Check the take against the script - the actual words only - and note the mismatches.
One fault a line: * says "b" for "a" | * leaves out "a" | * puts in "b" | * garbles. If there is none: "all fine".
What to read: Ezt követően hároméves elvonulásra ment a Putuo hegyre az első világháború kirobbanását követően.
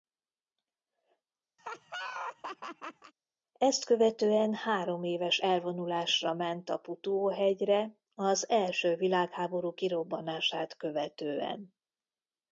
all fine